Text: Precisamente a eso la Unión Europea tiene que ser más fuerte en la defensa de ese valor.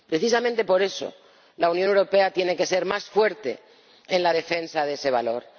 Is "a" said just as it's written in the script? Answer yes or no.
no